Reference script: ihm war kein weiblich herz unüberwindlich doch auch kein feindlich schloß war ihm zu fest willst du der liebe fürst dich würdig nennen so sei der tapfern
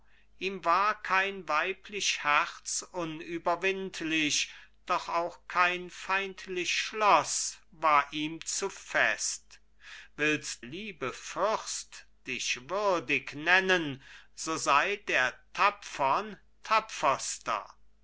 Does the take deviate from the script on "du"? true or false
true